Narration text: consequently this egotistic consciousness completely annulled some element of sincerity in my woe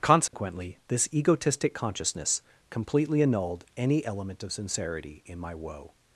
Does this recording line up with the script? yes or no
no